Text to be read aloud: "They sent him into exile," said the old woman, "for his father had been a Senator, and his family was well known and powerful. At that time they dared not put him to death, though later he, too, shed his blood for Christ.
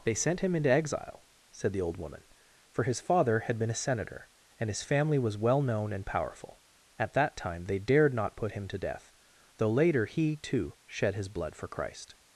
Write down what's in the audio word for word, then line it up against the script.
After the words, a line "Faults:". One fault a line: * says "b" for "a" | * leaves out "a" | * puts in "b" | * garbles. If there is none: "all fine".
"They sent him into exile," said the old woman, "for his father had been a Senator, and his family was well known and powerful. At that time they dared not put him to death, though later he, too, shed his blood for Christ.
Faults:
all fine